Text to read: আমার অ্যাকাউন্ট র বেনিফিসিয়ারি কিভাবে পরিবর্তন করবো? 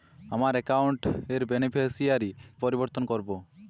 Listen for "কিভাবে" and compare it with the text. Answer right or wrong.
wrong